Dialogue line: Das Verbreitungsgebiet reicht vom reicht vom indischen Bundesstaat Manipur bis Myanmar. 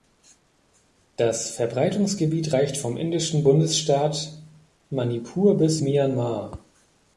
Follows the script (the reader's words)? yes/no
no